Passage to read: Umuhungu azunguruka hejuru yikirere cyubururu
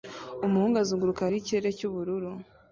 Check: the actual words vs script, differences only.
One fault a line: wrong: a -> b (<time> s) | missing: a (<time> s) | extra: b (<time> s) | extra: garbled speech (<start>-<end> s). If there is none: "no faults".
missing: hejuru (1.3 s)